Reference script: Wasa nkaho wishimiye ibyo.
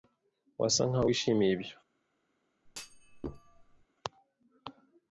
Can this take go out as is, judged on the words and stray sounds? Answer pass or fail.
fail